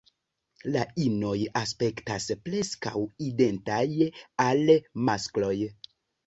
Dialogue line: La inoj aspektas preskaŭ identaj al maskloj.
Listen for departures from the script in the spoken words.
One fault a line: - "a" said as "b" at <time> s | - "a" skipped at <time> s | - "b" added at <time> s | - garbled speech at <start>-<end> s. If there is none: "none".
none